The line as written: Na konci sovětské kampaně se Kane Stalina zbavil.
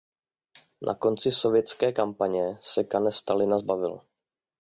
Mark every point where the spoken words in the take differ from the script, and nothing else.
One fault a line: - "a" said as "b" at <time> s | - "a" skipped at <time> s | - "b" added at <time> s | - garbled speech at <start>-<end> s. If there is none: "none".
none